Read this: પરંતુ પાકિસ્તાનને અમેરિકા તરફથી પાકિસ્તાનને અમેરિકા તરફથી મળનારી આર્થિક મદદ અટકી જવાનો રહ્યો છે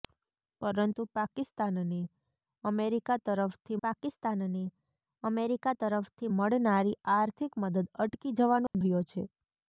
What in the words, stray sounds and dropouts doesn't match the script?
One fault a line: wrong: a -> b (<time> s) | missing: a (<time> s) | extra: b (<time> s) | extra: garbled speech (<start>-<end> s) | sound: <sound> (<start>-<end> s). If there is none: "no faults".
sound: dropout (8.7-8.7 s)